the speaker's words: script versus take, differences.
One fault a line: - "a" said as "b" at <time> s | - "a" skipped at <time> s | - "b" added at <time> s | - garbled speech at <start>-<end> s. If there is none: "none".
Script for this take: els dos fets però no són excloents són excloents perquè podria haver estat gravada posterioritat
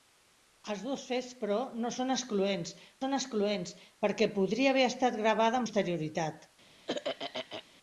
none